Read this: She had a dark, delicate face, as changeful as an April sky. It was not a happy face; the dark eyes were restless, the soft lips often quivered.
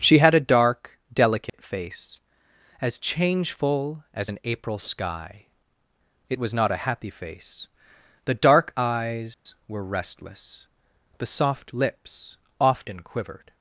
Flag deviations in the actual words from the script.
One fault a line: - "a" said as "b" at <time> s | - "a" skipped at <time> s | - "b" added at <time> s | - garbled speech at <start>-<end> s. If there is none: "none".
none